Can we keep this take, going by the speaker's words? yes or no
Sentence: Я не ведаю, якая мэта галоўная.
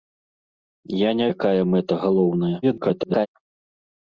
no